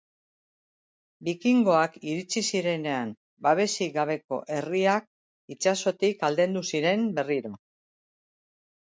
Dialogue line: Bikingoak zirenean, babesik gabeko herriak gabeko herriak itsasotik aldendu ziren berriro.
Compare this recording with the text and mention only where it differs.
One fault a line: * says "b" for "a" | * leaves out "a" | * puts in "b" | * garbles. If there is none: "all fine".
* puts in "iritsi"
* leaves out "gabeko herriak"